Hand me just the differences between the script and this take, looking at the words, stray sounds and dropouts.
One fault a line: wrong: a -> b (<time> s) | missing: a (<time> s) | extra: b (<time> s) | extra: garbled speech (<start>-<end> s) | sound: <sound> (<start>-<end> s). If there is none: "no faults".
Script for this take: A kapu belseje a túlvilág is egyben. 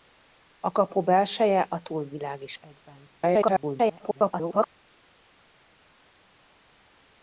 extra: garbled speech (3.2-4.7 s)